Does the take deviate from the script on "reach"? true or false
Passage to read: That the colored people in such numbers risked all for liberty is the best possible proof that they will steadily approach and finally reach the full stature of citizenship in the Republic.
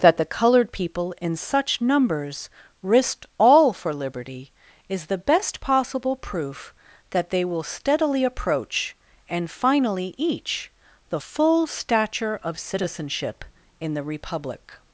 true